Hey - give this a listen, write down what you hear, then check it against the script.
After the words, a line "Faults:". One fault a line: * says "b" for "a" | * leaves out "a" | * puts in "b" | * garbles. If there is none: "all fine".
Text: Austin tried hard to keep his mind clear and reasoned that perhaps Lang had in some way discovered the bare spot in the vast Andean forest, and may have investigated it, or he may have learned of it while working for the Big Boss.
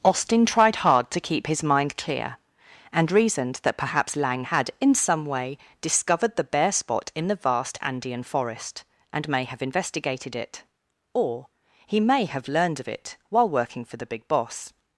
Austin tried hard to keep his mind clear and reasoned that perhaps Lang had in some way discovered the bare spot in the vast Andean forest, and may have investigated it, or he may have learned of it while working for the Big Boss.
Faults:
all fine